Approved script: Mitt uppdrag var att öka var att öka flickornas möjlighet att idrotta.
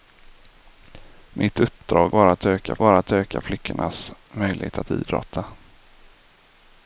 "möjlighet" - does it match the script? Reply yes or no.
yes